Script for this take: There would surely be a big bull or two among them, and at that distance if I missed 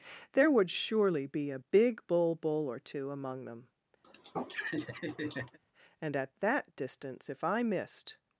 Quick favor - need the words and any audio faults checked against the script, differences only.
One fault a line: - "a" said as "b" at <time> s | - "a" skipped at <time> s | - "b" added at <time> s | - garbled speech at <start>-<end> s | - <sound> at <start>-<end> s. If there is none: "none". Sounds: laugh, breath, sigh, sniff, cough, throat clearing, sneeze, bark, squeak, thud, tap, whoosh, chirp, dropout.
- "bull" added at 2.4 s
- laugh at 4.0-5.6 s